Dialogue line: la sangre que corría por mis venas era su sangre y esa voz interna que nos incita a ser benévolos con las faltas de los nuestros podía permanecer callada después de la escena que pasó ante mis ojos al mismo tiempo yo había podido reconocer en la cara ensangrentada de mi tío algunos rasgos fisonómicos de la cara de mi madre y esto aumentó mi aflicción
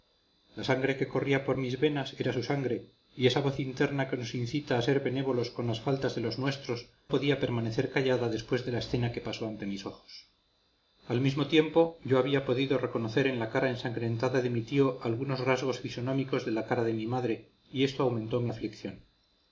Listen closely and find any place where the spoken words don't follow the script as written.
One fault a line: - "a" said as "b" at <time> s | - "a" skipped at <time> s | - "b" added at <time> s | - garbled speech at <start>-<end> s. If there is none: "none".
none